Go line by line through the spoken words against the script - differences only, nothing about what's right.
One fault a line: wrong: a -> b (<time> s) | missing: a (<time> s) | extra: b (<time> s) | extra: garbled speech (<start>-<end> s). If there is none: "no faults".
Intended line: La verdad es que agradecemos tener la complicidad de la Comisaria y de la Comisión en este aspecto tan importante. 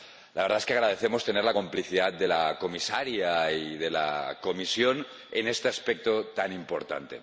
no faults